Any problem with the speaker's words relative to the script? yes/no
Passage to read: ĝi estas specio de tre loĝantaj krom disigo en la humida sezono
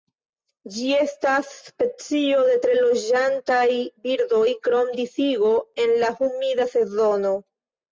yes